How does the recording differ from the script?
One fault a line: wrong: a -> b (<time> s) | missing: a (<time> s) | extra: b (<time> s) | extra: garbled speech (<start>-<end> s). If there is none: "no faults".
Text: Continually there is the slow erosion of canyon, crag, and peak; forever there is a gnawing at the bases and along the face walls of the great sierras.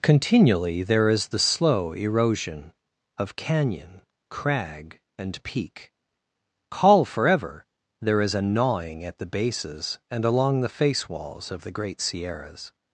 extra: call (6.7 s)